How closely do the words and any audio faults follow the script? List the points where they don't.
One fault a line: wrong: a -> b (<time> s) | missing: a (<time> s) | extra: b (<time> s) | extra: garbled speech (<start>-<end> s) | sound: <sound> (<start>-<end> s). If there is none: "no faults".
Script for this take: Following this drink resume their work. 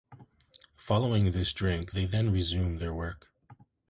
extra: they then (1.9 s)